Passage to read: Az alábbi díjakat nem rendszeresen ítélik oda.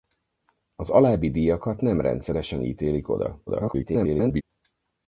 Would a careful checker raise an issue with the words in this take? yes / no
yes